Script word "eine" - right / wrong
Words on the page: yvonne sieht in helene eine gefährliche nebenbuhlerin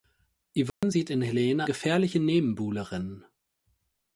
wrong